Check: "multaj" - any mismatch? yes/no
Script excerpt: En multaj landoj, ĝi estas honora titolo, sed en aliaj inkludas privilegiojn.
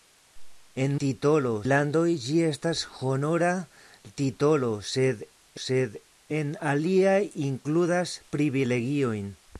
yes